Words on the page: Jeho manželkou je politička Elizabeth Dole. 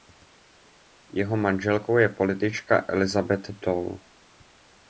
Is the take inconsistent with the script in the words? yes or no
no